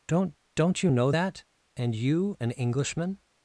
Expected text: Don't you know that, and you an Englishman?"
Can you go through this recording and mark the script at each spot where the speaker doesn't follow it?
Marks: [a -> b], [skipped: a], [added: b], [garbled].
Don't [added: don't] you know that, and you an Englishman?"